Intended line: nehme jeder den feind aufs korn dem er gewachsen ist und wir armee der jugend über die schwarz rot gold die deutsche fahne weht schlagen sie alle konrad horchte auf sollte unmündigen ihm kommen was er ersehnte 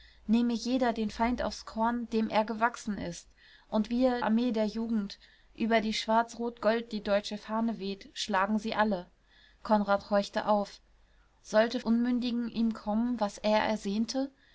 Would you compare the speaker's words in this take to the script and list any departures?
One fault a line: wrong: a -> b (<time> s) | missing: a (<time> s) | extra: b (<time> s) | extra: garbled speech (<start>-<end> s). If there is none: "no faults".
no faults